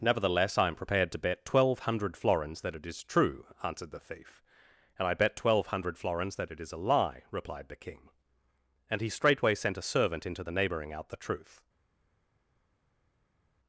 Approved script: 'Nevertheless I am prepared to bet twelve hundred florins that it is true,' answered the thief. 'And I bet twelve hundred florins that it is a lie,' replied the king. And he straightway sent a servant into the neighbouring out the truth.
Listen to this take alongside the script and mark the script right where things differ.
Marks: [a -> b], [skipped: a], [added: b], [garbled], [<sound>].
'Nevertheless I am prepared to bet twelve hundred florins that it is true,' answered the thief. 'And I bet twelve hundred florins that it is a lie,' replied the king. And he straightway sent a servant into the neighbouring out the truth.